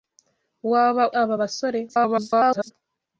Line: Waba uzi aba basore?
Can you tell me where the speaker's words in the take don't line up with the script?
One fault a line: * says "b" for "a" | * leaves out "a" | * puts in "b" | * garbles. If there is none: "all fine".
* leaves out "uzi"
* garbles